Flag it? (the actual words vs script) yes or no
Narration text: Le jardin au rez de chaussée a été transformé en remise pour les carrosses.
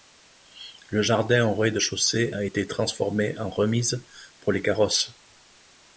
no